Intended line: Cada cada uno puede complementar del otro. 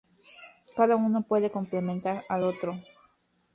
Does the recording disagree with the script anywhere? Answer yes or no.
yes